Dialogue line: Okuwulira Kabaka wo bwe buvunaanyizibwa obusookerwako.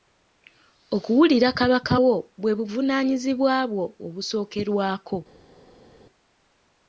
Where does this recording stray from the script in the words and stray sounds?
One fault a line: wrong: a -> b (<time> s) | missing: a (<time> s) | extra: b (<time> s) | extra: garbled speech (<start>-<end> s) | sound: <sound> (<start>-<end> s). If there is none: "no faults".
extra: bwo (3.7 s)